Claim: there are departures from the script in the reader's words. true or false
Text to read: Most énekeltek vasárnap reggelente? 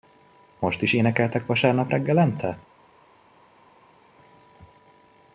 true